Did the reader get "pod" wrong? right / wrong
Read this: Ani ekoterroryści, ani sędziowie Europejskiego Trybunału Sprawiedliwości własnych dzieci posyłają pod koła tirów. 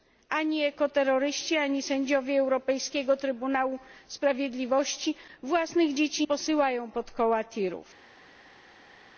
right